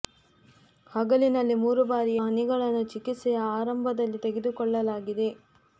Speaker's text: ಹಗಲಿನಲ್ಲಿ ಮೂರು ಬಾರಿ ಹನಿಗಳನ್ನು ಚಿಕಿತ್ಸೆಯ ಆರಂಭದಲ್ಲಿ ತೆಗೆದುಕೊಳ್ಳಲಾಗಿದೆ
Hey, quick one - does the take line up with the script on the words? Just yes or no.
yes